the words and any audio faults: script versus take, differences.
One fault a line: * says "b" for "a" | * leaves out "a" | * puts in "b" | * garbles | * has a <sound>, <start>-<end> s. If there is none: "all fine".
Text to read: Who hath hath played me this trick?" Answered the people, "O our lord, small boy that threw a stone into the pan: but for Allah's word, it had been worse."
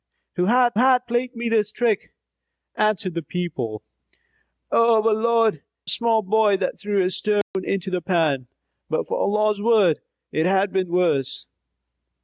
* has a dropout, 7.4-7.5 s